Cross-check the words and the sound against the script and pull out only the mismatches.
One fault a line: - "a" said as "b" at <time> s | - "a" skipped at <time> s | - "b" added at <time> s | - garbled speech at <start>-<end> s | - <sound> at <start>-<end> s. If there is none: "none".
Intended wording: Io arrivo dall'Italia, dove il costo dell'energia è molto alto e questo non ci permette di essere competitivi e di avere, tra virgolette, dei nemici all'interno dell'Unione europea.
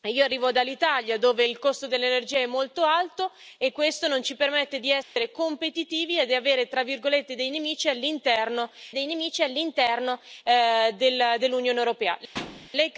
- dropout at 5.0-5.2 s
- "dei nemici all'interno" added at 8.9 s
- thud at 12.3-12.7 s